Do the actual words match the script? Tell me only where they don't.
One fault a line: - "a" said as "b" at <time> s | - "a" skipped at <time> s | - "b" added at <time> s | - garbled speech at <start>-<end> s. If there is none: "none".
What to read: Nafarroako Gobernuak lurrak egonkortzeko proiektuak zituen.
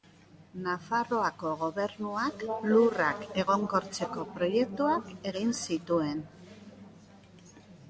- "egin" added at 5.3 s